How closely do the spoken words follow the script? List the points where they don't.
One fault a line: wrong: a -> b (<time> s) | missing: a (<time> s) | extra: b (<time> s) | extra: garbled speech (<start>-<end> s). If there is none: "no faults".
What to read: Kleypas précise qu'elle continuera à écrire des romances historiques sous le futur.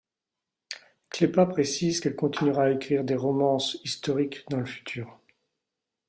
wrong: sous -> dans (4.5 s)